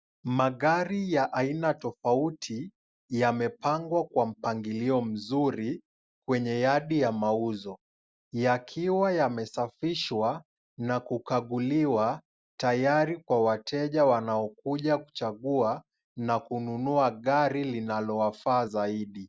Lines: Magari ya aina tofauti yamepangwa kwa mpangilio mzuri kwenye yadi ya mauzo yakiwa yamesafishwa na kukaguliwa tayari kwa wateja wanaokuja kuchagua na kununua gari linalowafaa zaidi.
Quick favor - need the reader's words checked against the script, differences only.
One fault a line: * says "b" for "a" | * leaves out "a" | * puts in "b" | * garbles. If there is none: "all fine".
all fine